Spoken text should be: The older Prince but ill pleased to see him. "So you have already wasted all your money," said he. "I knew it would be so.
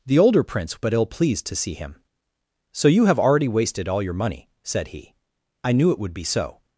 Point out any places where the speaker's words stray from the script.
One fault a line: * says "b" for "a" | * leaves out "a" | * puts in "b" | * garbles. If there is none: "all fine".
all fine